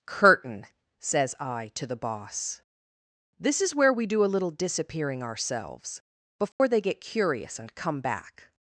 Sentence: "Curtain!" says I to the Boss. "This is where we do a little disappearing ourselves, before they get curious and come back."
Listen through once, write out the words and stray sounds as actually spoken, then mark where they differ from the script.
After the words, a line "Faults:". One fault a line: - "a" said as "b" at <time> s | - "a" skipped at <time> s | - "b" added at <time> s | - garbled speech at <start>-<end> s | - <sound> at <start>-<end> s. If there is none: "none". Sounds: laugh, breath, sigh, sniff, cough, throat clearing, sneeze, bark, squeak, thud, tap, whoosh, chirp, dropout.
"Curtain!" says I to the Boss. "This is where we do a little disappearing ourselves, before they get curious and come back."
Faults:
- dropout at 6.5-6.6 s